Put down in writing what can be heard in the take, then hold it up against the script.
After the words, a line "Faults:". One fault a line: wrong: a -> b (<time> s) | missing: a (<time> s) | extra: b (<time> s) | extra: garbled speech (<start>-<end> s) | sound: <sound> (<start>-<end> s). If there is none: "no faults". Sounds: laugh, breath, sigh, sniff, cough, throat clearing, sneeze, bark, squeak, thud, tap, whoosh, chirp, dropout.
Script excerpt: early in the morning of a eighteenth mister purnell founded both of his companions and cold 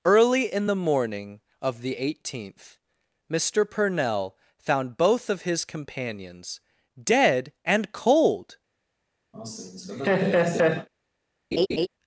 early in the morning of the eighteenth mister purnell found both of his companions dead and cold
Faults:
wrong: a -> the (1.8 s)
wrong: founded -> found (4.6 s)
extra: dead (7.0 s)
sound: laugh (9.3-10.9 s)
sound: laugh (11.5-11.9 s)